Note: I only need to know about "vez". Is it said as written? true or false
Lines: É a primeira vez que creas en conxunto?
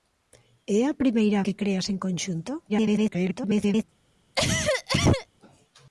false